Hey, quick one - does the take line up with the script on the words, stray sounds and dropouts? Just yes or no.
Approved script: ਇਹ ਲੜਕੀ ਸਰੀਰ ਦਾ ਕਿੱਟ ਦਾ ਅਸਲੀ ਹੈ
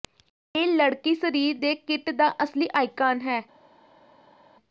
no